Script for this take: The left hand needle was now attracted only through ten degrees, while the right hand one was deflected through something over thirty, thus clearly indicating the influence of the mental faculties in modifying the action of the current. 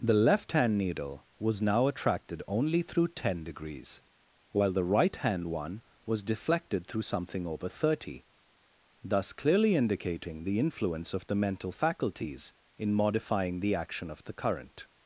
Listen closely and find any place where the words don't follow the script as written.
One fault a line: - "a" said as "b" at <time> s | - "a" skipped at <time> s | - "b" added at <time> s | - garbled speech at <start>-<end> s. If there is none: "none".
none